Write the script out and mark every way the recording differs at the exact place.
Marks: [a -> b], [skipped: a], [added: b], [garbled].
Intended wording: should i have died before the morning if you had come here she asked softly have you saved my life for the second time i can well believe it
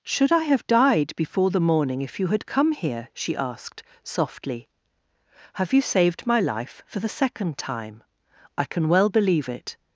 should i have died before the morning if you had come here she asked softly have you saved my life for the second time i can well believe it